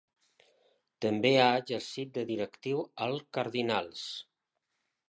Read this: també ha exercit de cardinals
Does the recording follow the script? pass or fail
fail